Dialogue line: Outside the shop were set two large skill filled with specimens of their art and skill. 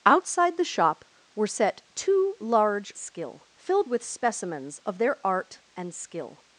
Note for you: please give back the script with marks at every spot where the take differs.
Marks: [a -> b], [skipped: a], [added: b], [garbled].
Outside the shop were set two large skill filled with specimens of their art and skill.